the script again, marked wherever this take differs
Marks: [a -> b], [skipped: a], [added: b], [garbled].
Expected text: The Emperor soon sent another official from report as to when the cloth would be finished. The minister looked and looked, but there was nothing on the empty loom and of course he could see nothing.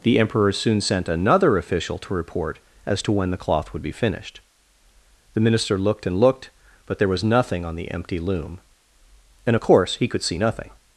The Emperor soon sent another official [from -> to] report as to when the cloth would be finished. The minister looked and looked, but there was nothing on the empty loom and of course he could see nothing.